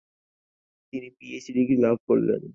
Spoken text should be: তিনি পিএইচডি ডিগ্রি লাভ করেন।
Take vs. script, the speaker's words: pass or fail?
pass